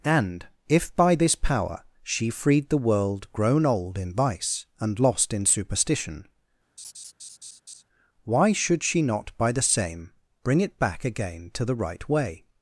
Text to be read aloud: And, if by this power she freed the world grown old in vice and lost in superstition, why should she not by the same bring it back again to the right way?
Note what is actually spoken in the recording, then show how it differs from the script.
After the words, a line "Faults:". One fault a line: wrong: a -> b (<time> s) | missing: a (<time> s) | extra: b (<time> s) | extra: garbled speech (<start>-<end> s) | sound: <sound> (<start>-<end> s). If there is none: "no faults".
And, if by this power she freed the world grown old in vice and lost in superstition, why should she not by the same bring it back again to the right way?
Faults:
sound: laugh (6.8-7.8 s)